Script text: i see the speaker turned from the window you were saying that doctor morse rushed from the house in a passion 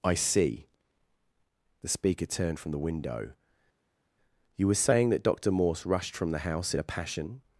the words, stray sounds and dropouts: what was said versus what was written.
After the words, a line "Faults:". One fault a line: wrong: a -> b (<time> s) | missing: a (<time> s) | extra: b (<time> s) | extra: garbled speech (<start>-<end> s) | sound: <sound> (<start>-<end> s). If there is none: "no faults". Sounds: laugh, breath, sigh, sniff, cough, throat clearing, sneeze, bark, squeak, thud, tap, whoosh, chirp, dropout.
i see the speaker turned from the window you were saying that doctor morse rushed from the house in a passion
Faults:
no faults